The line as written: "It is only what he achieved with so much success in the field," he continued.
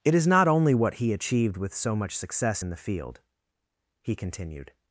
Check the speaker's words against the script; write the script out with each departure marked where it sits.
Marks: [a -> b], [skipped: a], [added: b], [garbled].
"It is [added: not] only what he achieved with so much success in the field," he continued.